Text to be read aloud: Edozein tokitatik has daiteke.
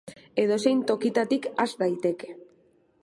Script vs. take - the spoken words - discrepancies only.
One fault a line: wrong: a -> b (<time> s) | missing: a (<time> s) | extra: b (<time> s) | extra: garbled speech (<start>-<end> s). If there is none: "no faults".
no faults